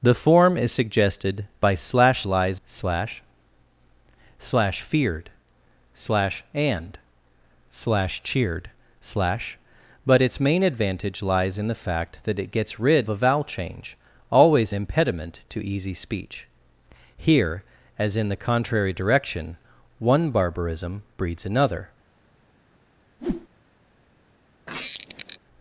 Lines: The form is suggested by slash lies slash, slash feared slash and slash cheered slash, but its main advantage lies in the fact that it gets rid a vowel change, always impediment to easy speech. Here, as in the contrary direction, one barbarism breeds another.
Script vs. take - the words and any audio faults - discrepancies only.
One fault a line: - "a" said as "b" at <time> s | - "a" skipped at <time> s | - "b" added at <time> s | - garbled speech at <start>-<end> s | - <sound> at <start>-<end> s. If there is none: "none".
- whoosh at 23.2-23.5 s
- squeak at 24.7-25.4 s